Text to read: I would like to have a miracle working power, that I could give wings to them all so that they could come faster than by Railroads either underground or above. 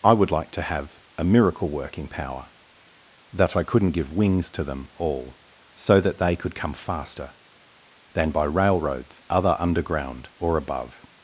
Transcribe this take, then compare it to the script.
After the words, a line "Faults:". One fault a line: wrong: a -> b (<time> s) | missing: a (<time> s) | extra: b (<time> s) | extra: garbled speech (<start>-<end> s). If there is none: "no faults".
I would like to have a miracle working power, that I couldn't give wings to them all so that they could come faster than by Railroads other underground or above.
Faults:
wrong: could -> couldn't (3.6 s)
wrong: either -> other (9.3 s)